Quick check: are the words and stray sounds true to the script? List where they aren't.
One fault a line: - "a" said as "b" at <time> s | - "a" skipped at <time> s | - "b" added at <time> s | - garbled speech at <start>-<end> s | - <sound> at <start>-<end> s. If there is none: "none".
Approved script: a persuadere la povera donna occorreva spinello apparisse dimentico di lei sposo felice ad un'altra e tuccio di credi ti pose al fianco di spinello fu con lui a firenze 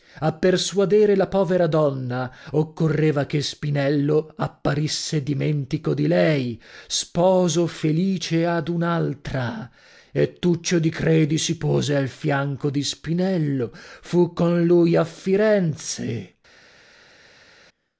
- "che" added at 3.3 s
- "ti" said as "si" at 11.4 s